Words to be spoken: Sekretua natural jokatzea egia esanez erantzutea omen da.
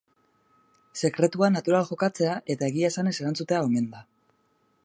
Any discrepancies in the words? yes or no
yes